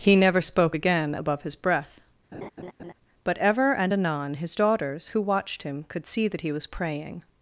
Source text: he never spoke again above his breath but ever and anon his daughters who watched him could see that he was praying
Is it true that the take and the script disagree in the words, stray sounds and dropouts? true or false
true